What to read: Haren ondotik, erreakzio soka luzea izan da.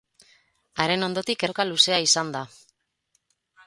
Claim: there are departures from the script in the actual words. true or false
true